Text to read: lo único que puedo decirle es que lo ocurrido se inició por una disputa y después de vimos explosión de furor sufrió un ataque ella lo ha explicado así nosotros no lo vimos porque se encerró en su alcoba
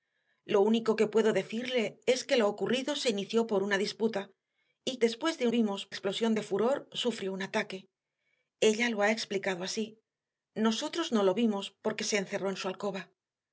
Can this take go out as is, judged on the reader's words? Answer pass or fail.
pass